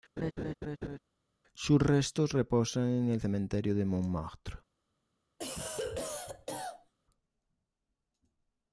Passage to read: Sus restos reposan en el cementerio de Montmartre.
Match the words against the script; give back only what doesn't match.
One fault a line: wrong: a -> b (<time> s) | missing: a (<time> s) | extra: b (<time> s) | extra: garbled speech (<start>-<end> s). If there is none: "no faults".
no faults